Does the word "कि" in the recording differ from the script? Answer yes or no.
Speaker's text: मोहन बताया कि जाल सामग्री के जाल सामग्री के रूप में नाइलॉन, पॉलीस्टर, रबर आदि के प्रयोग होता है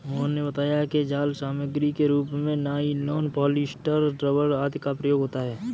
no